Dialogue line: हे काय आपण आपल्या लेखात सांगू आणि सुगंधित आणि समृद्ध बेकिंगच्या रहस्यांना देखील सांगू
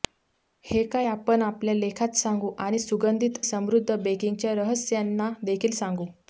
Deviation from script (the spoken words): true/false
true